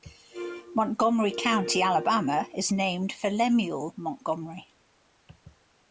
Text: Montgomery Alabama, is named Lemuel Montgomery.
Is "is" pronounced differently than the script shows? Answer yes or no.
no